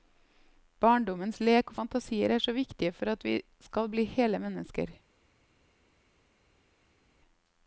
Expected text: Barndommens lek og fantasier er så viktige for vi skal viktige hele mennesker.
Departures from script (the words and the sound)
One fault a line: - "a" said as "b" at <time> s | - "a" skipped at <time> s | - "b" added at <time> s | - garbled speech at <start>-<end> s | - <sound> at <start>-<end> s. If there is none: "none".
- "at" added at 3.2 s
- "viktige" said as "bli" at 3.9 s